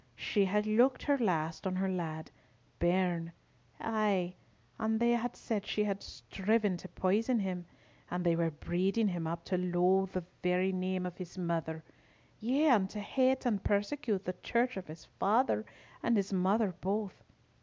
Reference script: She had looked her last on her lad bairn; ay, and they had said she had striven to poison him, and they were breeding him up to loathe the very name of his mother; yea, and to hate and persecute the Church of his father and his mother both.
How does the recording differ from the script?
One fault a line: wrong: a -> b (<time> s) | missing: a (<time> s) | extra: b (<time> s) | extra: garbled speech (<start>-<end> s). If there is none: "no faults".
no faults